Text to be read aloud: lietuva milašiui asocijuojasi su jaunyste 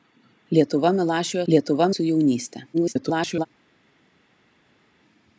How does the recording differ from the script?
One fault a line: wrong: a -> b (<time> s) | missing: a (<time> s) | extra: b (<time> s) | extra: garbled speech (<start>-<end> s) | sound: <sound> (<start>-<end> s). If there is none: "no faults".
wrong: asocijuojasi -> lietuva (1.5 s)
extra: garbled speech (2.7-3.5 s)